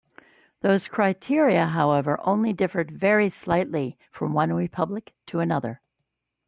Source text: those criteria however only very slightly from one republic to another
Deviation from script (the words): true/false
true